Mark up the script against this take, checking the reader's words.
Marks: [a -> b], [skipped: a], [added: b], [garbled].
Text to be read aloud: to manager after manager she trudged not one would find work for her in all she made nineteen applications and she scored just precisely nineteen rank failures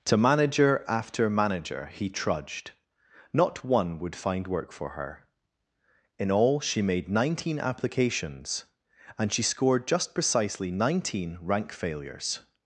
to manager after manager [she -> he] trudged not one would find work for her in all she made nineteen applications and she scored just precisely nineteen rank failures